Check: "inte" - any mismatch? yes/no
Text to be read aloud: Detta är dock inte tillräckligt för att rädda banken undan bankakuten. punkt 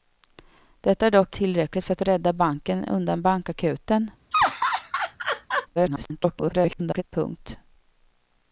yes